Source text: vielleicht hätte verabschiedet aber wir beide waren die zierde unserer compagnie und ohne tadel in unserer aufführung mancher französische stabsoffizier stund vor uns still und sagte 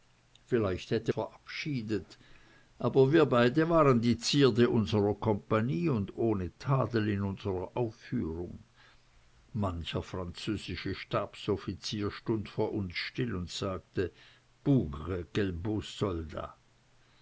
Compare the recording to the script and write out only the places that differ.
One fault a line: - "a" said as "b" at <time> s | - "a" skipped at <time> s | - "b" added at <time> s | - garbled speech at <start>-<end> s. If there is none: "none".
none